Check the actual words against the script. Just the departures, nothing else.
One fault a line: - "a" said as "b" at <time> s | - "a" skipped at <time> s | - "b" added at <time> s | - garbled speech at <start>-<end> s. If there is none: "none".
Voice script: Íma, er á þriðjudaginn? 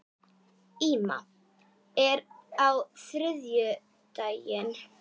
none